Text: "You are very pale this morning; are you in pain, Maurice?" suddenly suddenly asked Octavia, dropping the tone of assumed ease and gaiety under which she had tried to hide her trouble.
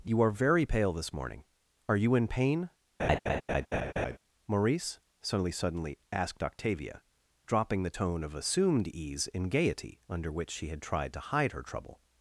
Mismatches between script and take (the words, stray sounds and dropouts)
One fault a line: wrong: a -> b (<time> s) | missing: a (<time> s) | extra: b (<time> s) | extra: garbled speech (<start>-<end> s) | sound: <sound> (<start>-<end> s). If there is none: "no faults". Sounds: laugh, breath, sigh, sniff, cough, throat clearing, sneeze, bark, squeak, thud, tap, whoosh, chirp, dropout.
sound: laugh (3.0-4.2 s)